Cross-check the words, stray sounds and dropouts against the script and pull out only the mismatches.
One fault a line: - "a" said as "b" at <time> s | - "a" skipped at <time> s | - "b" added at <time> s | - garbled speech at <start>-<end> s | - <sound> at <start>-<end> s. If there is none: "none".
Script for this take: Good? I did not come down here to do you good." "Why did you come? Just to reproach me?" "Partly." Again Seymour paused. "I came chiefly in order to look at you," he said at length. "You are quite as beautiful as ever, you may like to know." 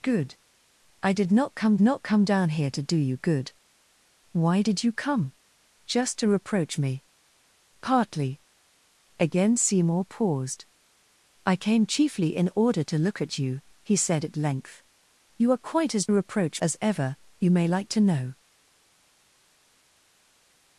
- "not come" added at 1.8 s
- "beautiful" said as "reproach" at 16.1 s